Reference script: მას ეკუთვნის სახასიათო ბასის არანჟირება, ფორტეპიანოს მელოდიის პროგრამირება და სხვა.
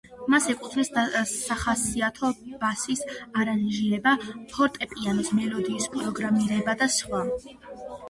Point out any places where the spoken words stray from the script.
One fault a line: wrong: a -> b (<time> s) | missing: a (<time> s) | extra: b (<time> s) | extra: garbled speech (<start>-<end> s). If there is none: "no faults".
no faults